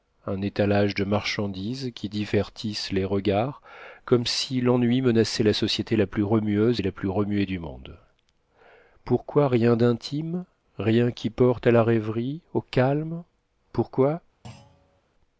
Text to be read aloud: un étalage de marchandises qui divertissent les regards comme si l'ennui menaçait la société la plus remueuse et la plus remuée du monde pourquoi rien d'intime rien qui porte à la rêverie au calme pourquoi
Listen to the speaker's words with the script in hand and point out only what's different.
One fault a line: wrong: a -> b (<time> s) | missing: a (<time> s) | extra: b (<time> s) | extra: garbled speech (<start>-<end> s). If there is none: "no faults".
no faults